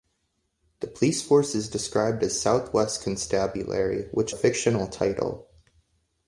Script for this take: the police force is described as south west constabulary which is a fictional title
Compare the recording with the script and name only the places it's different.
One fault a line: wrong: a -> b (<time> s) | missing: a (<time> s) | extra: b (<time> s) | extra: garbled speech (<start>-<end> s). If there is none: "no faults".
missing: is (4.3 s)